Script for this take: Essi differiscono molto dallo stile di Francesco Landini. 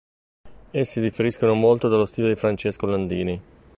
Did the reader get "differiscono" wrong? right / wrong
right